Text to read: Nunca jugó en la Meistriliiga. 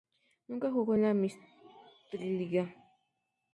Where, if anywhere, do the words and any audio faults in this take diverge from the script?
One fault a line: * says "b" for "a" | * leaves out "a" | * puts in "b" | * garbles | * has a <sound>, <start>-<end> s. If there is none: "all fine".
all fine